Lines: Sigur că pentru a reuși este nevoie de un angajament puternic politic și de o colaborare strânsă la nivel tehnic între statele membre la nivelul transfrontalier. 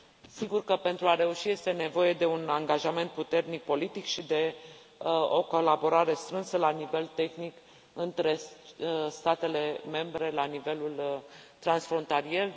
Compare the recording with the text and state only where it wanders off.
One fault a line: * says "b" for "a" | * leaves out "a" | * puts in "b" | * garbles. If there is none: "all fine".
all fine